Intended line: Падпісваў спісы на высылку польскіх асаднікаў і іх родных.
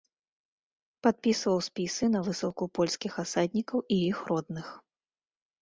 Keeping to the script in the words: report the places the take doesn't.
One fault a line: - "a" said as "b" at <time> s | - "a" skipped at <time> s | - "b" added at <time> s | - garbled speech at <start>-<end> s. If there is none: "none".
none